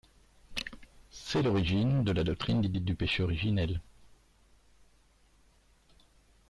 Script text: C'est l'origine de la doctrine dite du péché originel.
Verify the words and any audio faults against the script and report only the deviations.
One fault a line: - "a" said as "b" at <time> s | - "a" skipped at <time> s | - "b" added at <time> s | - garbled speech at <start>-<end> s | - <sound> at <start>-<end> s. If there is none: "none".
- "dite" added at 2.7 s